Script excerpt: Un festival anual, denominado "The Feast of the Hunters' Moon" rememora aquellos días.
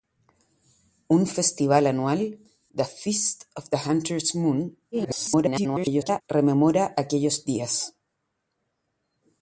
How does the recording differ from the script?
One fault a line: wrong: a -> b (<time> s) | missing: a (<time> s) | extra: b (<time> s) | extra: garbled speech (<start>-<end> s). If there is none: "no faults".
missing: denominado (2.4 s)
extra: garbled speech (4.9-6.2 s)